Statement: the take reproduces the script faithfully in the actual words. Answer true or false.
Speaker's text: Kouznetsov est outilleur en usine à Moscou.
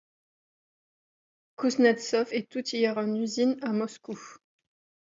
true